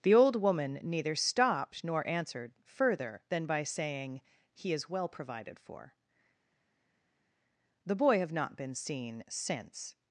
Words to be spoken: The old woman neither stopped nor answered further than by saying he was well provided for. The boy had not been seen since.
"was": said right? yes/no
no